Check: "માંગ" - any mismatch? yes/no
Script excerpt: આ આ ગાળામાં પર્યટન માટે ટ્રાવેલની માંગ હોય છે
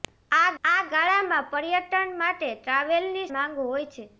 no